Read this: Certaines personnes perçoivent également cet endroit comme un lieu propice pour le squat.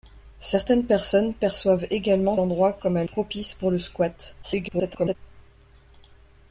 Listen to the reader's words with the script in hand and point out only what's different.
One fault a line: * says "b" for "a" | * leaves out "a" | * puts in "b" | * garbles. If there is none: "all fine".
* leaves out "cet"
* leaves out "lieu"
* garbles